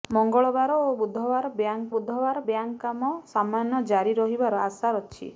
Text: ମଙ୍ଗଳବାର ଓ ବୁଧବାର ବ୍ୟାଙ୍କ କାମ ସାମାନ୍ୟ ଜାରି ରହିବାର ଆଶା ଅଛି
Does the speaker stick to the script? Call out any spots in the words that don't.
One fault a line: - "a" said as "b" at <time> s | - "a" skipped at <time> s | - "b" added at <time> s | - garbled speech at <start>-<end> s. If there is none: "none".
- "ବୁଧବାର ବ୍ୟାଙ୍କ" added at 1.9 s